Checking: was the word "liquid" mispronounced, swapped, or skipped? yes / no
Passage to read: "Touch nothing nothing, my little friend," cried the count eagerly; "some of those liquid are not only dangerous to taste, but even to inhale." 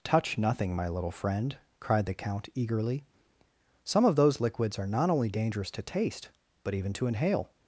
yes